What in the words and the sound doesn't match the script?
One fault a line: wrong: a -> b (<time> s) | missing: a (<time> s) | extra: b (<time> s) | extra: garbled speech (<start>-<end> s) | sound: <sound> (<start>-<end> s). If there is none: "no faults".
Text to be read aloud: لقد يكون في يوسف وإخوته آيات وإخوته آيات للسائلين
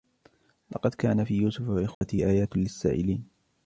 wrong: يكون -> كان (0.9 s)
sound: dropout (1.9-2.0 s)
missing: وإخوته آيات (2.6 s)